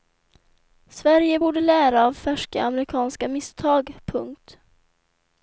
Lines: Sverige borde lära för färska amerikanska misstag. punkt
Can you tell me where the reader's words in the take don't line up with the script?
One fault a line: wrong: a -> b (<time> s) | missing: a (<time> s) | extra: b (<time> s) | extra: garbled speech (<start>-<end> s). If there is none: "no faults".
wrong: för -> av (2.0 s)